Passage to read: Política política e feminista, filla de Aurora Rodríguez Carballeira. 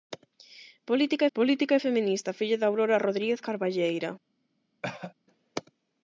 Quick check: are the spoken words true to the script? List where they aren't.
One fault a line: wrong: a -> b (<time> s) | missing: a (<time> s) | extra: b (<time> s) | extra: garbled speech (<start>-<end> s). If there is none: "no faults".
no faults